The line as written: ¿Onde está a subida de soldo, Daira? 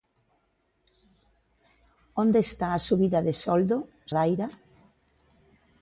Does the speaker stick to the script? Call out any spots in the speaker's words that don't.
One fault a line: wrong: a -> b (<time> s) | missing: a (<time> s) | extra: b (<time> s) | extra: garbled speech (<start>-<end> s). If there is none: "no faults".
no faults